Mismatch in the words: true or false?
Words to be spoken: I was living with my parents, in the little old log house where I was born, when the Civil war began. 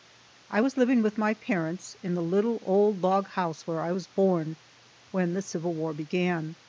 false